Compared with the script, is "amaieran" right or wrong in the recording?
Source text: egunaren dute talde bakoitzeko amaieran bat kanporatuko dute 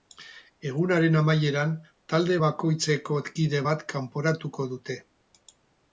wrong